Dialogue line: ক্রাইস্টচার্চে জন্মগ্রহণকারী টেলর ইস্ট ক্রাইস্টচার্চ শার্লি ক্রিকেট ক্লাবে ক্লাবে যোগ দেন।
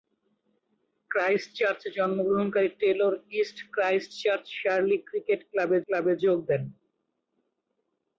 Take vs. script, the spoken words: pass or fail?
pass